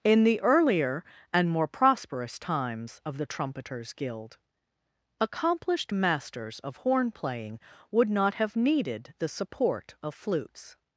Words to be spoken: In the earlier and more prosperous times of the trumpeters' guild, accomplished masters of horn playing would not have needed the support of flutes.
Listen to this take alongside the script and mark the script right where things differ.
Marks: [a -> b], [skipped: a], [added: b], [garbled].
In the earlier and more prosperous times of the trumpeters' guild, accomplished masters of horn playing would not have needed the support of flutes.